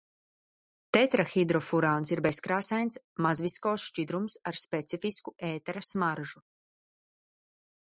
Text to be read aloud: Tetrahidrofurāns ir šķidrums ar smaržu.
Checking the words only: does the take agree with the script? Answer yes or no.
no